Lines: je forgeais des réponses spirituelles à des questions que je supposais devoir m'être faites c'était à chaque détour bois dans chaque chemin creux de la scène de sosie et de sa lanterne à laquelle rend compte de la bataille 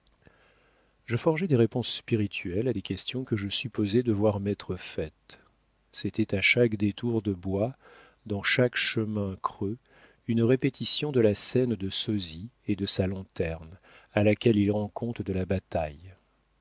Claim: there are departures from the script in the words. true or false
true